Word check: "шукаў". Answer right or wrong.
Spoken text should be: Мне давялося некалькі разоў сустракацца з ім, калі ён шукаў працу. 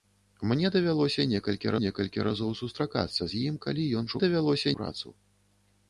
wrong